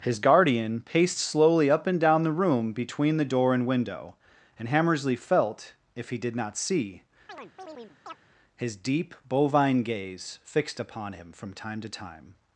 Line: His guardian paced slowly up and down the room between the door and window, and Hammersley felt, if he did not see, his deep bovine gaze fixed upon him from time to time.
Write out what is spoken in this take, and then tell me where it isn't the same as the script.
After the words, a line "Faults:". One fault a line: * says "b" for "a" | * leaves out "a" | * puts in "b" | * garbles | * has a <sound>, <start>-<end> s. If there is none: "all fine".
His guardian paced slowly up and down the room between the door and window, and Hammersley felt, if he did not see, his deep bovine gaze fixed upon him from time to time.
Faults:
* has a chirp, 7.3-8.2 s